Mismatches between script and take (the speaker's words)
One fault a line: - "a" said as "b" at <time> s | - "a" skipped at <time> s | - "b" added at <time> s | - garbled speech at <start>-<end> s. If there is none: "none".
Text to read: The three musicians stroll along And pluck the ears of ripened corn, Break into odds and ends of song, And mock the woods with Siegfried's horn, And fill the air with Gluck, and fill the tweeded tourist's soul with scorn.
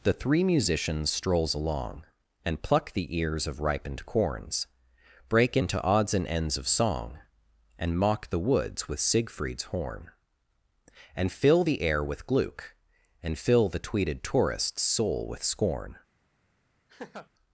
- "stroll" said as "strolls" at 1.1 s
- "corn" said as "corns" at 4.0 s